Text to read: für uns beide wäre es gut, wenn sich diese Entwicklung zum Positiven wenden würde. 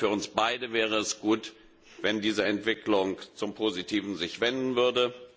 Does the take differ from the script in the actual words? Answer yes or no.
no